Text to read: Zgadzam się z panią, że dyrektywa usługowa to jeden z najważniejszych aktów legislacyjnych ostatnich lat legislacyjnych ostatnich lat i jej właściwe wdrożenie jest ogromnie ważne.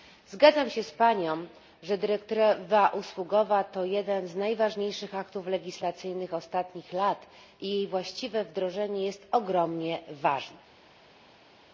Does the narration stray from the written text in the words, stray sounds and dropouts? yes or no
yes